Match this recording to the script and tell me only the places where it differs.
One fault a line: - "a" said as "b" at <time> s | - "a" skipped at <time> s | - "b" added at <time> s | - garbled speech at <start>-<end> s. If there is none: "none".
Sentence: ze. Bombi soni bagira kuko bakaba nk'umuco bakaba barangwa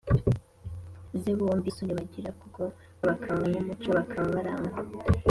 none